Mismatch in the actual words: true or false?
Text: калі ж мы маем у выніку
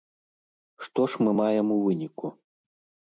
true